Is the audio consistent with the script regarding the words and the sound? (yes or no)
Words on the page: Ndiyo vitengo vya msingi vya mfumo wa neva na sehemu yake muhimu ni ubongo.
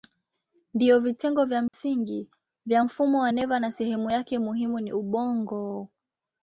no